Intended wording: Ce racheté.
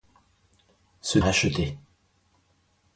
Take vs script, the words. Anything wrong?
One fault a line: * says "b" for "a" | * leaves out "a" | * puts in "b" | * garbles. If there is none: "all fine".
all fine